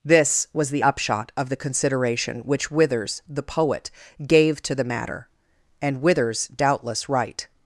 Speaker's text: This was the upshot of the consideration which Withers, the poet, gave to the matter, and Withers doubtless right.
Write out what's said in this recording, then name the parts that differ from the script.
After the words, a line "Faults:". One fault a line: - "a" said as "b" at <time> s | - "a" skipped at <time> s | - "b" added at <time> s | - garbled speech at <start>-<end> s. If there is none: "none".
This was the upshot of the consideration which Withers, the poet, gave to the matter, and Withers doubtless right.
Faults:
none